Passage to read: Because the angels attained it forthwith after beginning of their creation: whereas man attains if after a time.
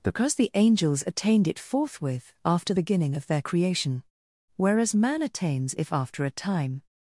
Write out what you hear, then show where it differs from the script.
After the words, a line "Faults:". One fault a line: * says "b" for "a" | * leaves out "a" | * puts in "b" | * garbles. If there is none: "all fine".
Because the angels attained it forthwith after beginning of their creation: whereas man attains if after a time.
Faults:
all fine